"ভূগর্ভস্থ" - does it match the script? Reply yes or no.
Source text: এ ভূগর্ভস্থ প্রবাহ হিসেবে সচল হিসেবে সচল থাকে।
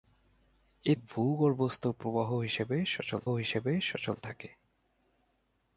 yes